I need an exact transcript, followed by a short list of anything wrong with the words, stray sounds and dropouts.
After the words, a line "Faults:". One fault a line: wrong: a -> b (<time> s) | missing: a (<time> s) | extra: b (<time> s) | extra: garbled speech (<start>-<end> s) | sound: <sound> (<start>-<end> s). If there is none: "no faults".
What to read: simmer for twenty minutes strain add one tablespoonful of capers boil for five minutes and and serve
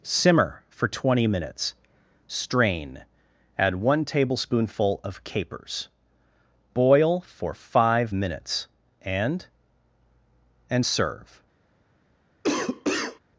simmer for twenty minutes strain add one tablespoonful of capers boil for five minutes and and serve
Faults:
sound: cough (12.4-13.2 s)